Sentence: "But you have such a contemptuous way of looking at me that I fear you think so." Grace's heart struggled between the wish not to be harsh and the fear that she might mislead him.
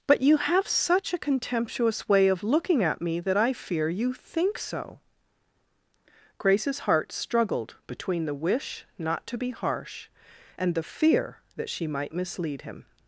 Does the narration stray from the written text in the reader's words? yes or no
no